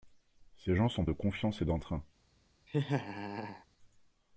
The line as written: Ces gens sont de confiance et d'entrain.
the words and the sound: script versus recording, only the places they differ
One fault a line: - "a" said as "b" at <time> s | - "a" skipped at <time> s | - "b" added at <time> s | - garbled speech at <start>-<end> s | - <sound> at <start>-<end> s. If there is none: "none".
- laugh at 2.7-3.7 s